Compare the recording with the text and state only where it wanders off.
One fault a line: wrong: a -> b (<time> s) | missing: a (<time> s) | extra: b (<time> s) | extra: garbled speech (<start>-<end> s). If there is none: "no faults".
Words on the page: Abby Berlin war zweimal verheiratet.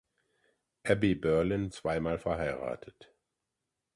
missing: war (1.7 s)